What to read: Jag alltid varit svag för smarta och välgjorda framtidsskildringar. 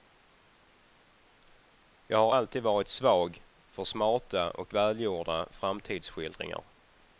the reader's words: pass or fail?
fail